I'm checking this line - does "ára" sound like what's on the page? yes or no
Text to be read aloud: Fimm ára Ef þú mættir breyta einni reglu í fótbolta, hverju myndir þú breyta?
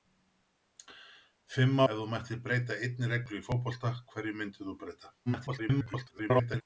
no